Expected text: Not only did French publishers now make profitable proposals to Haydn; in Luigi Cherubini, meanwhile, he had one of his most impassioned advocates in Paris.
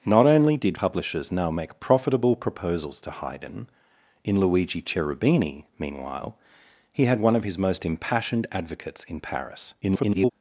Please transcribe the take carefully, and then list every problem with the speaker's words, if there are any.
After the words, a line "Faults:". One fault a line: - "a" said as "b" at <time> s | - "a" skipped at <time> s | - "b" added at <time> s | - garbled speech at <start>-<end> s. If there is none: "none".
Not only did Publishers now make profitable proposals to Haydn; in Luigi Cherubini, meanwhile, he had one of his most impassioned advocates in Paris. [garbled]
Faults:
- "French" skipped at 0.8 s
- garbled speech at 9.8-10.3 s